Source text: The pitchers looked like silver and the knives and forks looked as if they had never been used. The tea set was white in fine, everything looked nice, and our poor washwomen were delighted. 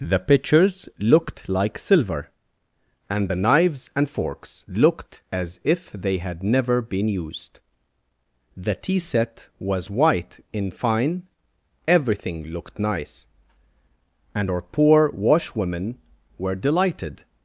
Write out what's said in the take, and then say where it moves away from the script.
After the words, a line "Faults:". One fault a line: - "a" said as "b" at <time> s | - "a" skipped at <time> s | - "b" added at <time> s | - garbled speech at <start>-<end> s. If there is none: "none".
The pitchers looked like silver and the knives and forks looked as if they had never been used. The tea set was white in fine, everything looked nice, and our poor washwomen were delighted.
Faults:
none